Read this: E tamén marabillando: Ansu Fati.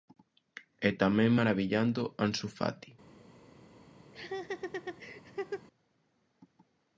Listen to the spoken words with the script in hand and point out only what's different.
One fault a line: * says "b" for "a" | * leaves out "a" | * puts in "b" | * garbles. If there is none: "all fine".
all fine